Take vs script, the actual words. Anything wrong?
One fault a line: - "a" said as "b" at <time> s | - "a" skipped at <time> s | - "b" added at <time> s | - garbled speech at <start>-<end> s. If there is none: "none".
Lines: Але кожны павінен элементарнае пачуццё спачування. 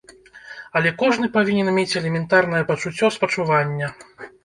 - "мець" added at 1.8 s